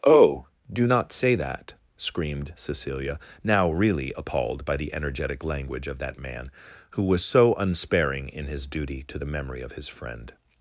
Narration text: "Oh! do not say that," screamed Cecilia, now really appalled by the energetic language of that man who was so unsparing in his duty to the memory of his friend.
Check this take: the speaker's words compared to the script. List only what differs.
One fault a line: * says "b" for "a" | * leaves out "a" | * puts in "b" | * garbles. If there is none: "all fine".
all fine